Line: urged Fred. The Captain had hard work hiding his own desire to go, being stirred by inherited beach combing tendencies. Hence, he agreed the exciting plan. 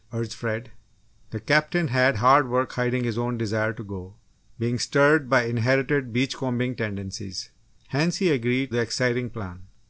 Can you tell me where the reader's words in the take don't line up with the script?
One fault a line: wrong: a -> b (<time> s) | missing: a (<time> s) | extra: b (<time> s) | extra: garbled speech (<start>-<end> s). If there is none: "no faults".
no faults